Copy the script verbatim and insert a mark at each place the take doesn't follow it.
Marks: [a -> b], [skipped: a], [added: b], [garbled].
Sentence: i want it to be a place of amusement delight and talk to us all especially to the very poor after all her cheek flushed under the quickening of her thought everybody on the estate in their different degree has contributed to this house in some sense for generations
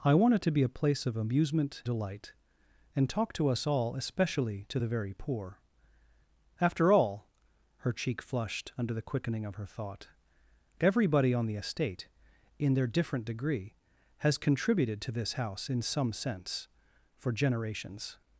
i want it to be a place of amusement delight and talk to us all especially to the very poor after all her cheek flushed under the quickening of her thought everybody on the estate in their different degree has contributed to this house in some sense for generations